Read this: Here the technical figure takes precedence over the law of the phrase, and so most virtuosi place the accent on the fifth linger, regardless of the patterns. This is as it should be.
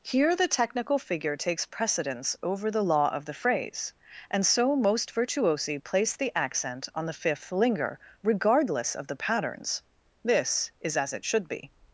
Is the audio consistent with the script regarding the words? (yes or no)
yes